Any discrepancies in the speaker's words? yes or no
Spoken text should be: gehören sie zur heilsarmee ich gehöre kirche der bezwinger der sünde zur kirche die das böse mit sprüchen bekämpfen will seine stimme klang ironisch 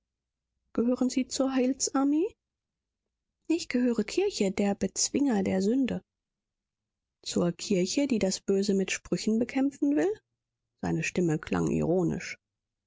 no